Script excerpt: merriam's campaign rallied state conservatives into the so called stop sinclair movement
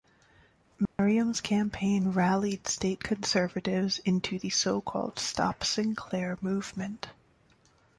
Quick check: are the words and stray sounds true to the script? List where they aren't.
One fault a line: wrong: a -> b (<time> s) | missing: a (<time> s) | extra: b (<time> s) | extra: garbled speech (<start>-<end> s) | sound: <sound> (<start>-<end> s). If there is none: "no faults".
sound: dropout (0.9-1.0 s)